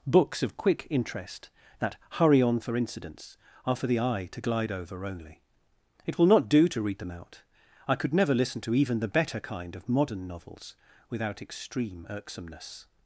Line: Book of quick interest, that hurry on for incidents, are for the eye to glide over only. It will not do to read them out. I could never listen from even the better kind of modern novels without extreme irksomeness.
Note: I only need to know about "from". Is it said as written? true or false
false